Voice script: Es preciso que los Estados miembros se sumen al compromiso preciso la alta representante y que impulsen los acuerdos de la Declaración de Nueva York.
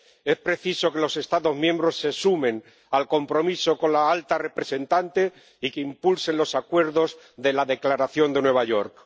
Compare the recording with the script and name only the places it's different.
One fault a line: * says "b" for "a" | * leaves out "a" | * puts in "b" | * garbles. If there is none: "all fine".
* says "con" for "preciso"